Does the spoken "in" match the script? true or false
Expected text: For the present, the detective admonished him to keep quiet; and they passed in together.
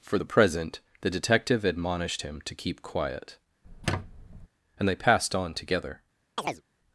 false